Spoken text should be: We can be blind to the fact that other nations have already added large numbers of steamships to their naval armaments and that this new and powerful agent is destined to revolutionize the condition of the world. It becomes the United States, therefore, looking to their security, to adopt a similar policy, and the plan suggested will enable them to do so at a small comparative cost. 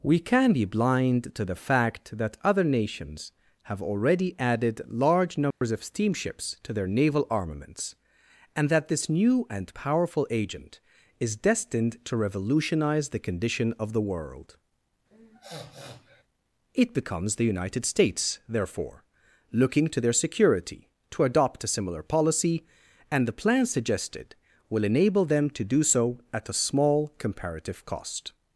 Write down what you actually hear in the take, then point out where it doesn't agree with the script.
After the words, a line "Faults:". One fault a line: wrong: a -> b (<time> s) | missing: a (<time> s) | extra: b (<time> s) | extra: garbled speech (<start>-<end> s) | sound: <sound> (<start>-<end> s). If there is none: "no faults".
We can be blind to the fact that other nations have already added large numbers of steamships to their naval armaments and that this new and powerful agent is destined to revolutionize the condition of the world. It becomes the United States, therefore, looking to their security, to adopt a similar policy, and the plan suggested will enable them to do so at a small comparative cost.
Faults:
sound: dropout (5.5-5.6 s)
sound: sniff (15.1-16.2 s)